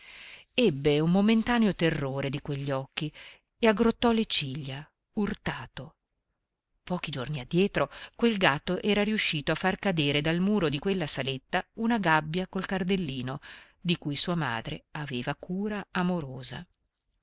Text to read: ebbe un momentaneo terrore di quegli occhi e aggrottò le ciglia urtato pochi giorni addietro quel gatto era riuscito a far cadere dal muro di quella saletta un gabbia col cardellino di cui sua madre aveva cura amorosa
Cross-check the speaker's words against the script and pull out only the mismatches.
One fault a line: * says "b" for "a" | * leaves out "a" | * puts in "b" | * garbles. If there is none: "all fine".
* says "una" for "un"